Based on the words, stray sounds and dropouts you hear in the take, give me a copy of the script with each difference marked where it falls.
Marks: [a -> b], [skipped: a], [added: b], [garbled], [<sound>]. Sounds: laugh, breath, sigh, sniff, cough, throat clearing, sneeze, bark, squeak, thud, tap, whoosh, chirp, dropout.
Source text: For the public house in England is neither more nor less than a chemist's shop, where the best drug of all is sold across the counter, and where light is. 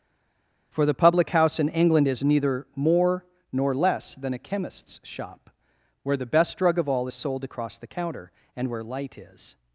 For the public house in England is neither more nor less than a chemist's shop, where the best drug of all is sold across the counter, and where light is.